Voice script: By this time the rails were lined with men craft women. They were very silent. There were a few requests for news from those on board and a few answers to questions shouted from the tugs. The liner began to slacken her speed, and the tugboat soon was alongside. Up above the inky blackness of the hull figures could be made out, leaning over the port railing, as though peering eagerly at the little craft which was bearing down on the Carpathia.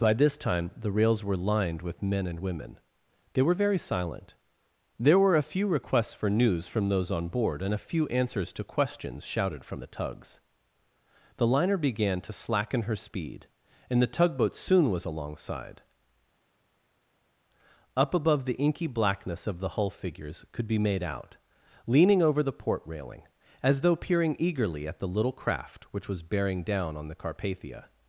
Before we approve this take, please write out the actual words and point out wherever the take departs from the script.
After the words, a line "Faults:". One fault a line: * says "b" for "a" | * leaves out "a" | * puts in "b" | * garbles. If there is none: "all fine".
By this time the rails were lined with men and women. They were very silent. There were a few requests for news from those on board and a few answers to questions shouted from the tugs. The liner began to slacken her speed, and the tugboat soon was alongside. Up above the inky blackness of the hull figures could be made out, leaning over the port railing, as though peering eagerly at the little craft which was bearing down on the Carpathia.
Faults:
* says "and" for "craft"